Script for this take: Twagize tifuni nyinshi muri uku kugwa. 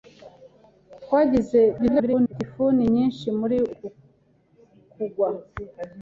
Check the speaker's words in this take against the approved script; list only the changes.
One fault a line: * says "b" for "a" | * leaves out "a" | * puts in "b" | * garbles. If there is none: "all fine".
* garbles